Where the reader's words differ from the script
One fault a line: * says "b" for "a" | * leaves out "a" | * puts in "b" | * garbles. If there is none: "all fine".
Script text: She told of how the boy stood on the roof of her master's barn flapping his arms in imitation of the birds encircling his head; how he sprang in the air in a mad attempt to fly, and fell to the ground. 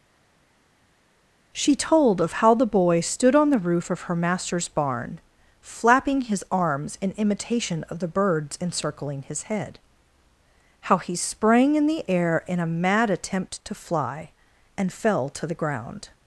all fine